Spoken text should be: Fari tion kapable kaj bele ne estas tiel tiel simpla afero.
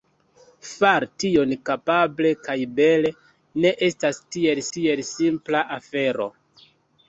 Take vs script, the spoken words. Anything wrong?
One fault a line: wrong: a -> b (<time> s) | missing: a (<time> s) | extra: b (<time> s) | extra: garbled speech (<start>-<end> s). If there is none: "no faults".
no faults